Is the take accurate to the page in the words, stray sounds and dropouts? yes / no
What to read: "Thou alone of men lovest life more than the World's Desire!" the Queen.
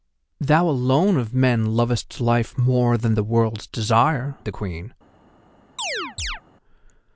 no